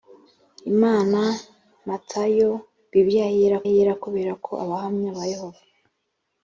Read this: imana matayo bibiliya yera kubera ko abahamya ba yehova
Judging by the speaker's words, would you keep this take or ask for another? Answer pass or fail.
fail